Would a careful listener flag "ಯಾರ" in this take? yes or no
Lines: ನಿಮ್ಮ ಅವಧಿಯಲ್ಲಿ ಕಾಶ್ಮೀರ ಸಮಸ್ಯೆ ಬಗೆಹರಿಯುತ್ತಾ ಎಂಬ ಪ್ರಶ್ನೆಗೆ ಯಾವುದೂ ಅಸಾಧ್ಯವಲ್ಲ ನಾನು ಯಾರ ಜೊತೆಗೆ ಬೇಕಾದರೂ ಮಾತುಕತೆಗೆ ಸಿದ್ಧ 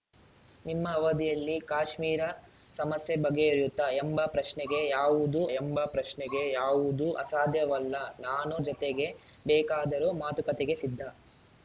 yes